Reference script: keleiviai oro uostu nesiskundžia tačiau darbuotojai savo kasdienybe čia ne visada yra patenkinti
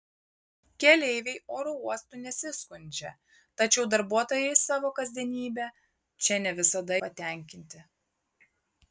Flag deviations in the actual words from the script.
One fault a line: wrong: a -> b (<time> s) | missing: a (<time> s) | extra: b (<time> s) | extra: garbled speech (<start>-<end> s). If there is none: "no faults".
missing: yra (6.9 s)